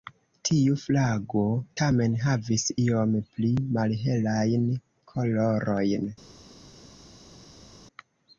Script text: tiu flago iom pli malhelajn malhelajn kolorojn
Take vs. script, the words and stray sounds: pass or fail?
fail